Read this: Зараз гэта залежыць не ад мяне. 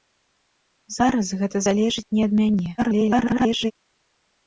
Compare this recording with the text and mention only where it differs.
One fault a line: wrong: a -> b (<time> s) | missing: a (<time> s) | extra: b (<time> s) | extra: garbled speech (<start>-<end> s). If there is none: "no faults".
extra: garbled speech (2.8-3.7 s)